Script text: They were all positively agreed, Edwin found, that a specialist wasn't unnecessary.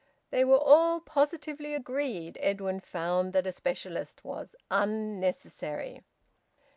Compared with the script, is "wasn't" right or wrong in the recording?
wrong